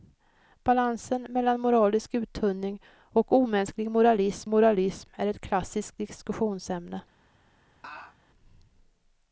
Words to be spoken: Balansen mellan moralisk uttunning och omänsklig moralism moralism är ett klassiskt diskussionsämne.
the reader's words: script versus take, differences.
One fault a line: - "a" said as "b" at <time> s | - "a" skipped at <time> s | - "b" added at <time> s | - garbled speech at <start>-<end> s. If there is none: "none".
none